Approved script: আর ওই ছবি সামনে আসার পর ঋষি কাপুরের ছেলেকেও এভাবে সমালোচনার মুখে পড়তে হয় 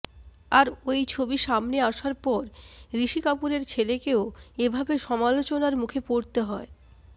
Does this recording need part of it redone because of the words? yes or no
no